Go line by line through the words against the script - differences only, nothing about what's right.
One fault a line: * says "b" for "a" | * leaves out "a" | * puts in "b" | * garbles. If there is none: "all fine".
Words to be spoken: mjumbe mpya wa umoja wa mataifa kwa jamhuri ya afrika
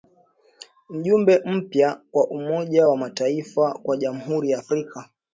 all fine